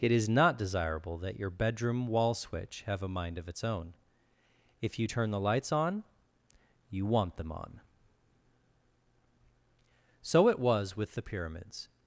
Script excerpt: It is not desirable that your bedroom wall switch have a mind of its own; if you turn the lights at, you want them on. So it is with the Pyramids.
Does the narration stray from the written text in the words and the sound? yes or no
yes